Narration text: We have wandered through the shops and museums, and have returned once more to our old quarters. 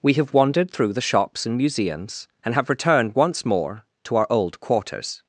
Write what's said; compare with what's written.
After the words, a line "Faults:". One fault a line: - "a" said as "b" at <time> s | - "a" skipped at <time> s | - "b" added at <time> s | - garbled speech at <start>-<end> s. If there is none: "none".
We have wandered through the shops and museums, and have returned once more to our old quarters.
Faults:
none